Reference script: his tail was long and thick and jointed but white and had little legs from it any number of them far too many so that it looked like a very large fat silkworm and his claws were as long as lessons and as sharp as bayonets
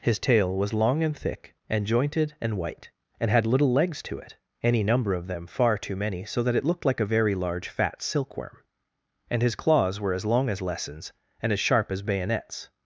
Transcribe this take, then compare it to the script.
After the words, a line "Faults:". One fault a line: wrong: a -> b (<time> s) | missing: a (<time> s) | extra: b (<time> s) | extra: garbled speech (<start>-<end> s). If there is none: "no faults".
his tail was long and thick and jointed and white and had little legs to it any number of them far too many so that it looked like a very large fat silkworm and his claws were as long as lessons and as sharp as bayonets
Faults:
wrong: but -> and (2.4 s)
wrong: from -> to (4.0 s)